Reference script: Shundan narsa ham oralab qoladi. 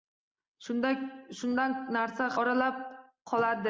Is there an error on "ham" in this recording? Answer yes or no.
yes